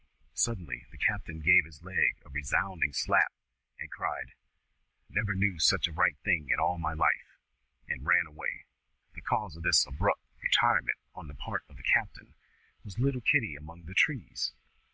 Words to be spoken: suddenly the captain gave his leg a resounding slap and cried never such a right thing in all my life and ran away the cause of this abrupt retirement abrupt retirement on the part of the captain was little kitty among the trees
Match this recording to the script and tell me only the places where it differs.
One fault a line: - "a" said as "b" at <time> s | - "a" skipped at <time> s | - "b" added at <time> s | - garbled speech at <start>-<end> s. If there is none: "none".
- "knew" added at 5.3 s
- "abrupt retirement" skipped at 11.0 s